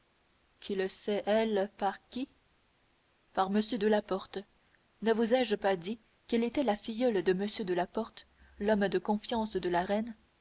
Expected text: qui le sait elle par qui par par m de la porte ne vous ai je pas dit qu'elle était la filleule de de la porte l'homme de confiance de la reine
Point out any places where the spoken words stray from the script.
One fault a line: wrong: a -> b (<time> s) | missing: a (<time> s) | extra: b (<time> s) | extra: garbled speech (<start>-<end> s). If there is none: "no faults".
missing: par (3.5 s)
extra: m (7.3 s)